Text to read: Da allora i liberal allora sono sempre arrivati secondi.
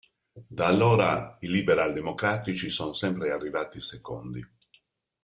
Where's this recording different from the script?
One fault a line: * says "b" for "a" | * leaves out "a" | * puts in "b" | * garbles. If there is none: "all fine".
* says "democratici" for "allora"